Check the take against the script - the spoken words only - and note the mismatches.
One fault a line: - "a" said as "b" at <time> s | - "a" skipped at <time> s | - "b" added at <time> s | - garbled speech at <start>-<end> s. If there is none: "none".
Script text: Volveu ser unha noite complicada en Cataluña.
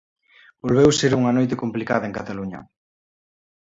none